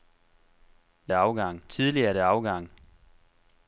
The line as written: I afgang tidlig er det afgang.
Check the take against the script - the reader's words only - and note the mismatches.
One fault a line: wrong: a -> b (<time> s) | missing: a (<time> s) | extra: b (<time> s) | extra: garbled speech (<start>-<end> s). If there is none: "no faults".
no faults